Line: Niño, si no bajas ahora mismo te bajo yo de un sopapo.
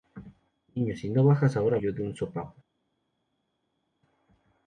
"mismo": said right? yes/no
no